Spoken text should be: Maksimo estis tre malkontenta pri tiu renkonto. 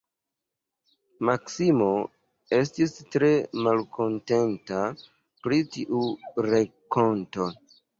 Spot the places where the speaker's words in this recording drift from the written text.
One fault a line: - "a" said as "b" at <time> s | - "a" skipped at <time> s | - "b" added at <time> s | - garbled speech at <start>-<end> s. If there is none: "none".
none